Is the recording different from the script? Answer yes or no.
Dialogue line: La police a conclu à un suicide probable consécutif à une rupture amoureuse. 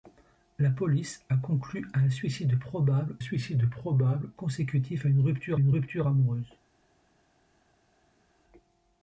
yes